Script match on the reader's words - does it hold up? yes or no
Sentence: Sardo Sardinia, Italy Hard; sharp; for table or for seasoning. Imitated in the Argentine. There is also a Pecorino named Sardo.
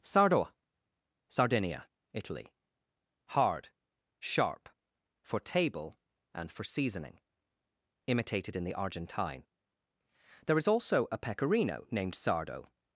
no